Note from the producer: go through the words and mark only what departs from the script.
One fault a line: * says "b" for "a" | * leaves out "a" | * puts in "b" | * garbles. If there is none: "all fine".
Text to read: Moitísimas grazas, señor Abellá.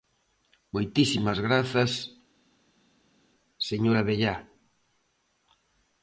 all fine